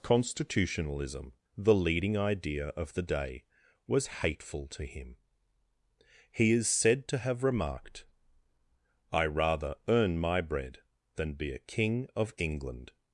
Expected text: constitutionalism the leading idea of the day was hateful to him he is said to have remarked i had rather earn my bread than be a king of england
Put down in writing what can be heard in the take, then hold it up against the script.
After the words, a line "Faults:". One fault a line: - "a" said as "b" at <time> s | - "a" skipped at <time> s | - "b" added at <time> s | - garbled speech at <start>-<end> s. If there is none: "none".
constitutionalism the leading idea of the day was hateful to him he is said to have remarked i rather earn my bread than be a king of england
Faults:
- "had" skipped at 9.2 s